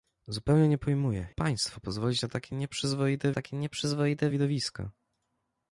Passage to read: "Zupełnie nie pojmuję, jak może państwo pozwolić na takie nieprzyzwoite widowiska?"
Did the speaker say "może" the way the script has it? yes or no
no